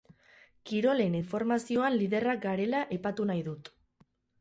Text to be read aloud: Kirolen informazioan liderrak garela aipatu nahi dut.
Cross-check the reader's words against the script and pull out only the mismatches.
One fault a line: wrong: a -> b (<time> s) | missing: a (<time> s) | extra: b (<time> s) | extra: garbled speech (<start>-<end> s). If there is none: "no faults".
no faults